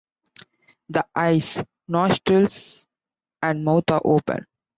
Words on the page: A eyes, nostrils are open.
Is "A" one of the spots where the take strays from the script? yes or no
yes